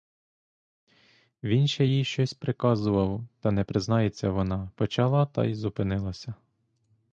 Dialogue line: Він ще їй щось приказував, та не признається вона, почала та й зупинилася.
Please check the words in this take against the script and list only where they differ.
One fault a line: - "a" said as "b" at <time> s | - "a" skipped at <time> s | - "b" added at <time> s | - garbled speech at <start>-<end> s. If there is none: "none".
none